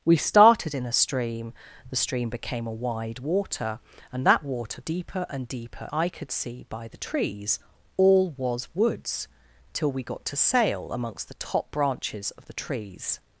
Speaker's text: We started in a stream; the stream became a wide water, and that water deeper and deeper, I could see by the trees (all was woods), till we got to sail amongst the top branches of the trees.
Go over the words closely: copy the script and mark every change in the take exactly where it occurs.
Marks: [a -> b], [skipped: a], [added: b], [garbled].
We started in a stream; the stream became a wide water, and that water deeper and deeper, I could see by the trees (all was woods), till we got to sail amongst the top branches of the trees.